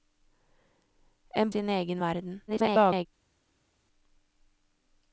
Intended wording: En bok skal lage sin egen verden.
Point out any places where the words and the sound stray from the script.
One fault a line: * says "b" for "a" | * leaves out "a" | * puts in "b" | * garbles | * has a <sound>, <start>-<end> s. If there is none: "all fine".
* leaves out "bok skal lage"
* garbles